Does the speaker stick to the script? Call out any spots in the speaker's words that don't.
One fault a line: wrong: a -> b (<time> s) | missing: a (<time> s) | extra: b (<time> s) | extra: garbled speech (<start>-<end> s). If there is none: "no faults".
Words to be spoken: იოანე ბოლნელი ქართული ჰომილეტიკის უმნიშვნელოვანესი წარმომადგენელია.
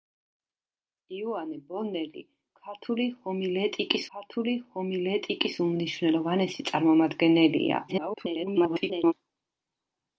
extra: ქართული ჰომილეტიკის (4.1 s)
extra: garbled speech (7.9-9.1 s)